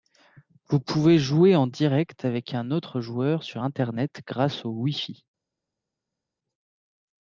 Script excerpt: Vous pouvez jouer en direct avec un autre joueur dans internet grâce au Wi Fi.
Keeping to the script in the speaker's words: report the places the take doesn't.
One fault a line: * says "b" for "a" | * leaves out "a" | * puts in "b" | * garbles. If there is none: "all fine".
* says "sur" for "dans"